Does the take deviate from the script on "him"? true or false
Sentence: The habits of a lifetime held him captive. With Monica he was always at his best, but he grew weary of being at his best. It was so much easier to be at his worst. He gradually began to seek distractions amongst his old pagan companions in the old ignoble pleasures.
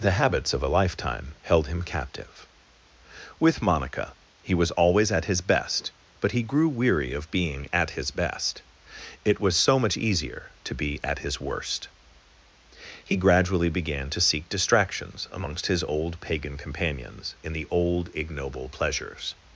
false